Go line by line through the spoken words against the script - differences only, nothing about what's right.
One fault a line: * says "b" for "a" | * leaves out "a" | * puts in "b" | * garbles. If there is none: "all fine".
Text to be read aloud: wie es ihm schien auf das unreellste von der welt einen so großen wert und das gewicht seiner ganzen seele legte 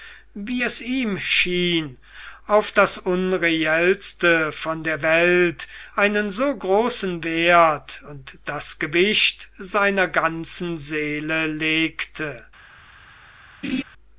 all fine